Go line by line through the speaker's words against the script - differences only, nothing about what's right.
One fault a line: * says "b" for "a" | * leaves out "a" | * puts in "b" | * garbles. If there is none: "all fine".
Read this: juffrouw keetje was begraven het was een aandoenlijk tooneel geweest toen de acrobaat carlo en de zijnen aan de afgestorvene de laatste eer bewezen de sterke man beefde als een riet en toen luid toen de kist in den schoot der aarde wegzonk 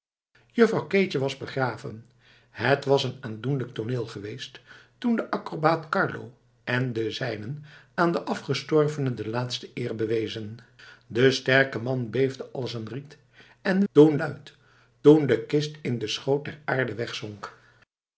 all fine